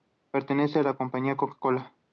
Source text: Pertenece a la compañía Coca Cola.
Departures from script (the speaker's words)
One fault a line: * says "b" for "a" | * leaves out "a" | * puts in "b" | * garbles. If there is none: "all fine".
all fine